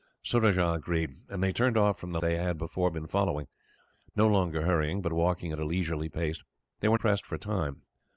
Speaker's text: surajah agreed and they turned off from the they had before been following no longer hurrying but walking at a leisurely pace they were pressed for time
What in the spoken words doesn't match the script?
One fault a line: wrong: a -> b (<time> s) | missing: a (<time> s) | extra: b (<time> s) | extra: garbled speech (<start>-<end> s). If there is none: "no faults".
no faults